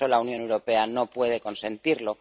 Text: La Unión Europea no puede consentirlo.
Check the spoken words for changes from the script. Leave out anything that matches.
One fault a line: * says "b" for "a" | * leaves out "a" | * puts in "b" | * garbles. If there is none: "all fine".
all fine